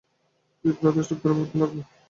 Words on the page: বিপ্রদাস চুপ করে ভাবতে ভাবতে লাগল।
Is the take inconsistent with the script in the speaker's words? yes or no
yes